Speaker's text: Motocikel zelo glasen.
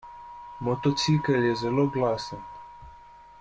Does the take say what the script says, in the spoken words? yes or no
no